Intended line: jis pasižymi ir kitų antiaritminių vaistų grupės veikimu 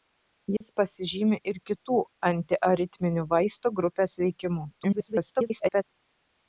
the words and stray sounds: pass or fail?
fail